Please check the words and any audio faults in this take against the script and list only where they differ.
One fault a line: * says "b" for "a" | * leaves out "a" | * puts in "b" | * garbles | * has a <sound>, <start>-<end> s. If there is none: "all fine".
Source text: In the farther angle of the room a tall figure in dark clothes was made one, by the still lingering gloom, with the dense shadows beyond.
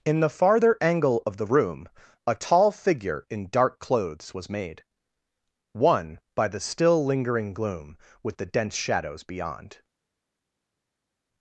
all fine